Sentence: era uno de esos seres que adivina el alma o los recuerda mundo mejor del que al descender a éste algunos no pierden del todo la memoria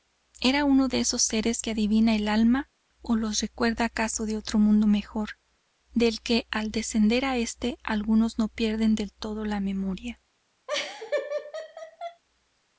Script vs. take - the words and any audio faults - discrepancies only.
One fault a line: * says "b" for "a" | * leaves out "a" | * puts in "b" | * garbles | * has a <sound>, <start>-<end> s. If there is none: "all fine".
* puts in "acaso de otro"
* has a laugh, 10.7-12.2 s